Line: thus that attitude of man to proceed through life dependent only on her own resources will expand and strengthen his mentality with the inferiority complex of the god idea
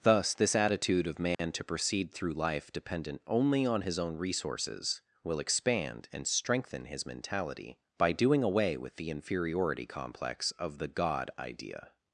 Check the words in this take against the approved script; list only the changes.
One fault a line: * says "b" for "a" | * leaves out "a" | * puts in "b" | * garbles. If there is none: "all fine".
* says "this" for "that"
* says "his" for "her"
* puts in "by doing away"